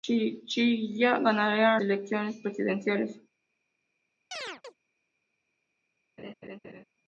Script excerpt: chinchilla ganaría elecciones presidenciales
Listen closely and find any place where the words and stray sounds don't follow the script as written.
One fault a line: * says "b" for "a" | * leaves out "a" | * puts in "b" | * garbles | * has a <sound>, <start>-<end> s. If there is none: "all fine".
* has a chirp, 4.3-4.8 s
* has a laugh, 6.2-6.8 s